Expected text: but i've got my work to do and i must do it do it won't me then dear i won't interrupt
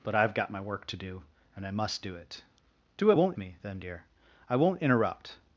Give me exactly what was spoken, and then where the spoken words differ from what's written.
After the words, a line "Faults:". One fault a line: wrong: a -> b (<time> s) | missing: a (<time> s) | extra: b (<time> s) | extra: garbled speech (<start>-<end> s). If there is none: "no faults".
but i've got my work to do and i must do it do it won't me then dear i won't interrupt
Faults:
no faults